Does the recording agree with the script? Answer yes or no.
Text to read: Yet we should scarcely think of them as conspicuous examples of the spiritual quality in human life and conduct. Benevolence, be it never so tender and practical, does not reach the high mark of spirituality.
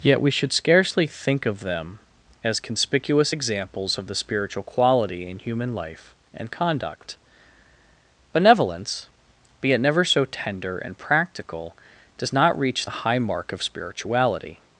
yes